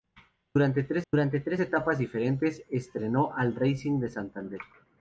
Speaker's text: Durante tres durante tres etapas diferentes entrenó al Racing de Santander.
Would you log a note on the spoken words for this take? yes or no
no